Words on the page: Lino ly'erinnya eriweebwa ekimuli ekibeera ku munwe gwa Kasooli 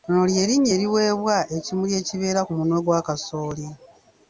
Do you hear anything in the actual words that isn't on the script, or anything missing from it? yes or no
no